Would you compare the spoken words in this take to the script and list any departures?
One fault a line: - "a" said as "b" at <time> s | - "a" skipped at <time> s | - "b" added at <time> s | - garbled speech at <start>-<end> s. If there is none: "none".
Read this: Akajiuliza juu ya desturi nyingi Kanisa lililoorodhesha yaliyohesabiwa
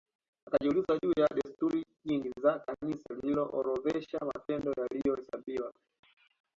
- "za" added at 2.4 s
- "matendo" added at 4.3 s